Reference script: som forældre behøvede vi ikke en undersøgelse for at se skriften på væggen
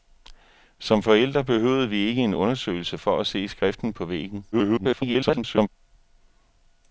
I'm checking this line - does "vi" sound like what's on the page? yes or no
yes